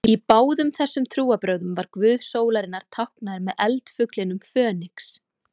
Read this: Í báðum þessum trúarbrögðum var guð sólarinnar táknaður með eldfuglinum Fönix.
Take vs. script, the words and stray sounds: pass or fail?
pass